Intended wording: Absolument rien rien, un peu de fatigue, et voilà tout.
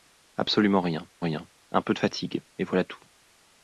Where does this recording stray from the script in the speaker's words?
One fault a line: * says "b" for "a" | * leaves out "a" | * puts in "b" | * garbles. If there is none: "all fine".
all fine